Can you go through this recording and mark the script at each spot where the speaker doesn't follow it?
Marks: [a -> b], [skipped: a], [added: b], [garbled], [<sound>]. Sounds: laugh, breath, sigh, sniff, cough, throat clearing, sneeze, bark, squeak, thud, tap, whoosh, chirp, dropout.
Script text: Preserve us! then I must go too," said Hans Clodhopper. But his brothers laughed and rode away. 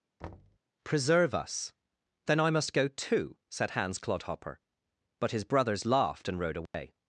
[thud] Preserve us! then I must go too," said Hans Clodhopper. But his brothers laughed and rode away. [dropout]